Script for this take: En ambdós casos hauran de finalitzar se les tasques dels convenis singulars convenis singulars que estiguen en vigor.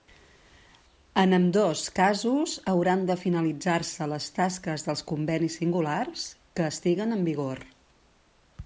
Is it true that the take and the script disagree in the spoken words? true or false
true